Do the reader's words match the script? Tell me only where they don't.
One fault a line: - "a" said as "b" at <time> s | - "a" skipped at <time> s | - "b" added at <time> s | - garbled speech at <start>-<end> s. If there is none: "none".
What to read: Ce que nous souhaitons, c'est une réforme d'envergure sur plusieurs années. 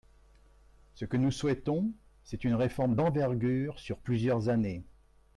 none